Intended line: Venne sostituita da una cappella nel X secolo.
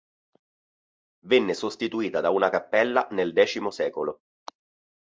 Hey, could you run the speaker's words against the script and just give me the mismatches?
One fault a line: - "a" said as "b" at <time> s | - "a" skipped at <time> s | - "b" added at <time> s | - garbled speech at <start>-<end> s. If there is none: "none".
none